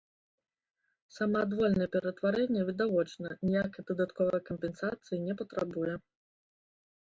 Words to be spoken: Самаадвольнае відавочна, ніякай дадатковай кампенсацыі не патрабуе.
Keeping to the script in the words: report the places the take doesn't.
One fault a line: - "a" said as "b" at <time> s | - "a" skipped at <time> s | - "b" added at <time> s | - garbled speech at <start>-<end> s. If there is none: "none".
- "ператварэнне" added at 1.9 s